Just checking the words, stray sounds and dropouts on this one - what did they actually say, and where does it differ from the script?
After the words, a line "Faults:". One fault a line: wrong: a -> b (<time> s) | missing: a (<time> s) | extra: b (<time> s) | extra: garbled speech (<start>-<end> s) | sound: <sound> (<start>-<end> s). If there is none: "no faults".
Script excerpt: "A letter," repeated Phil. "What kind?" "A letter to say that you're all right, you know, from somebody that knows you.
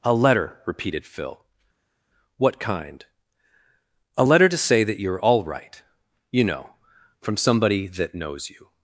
"A letter," repeated Phil. "What kind?" "A letter to say that you're all right, you know, from somebody that knows you.
Faults:
no faults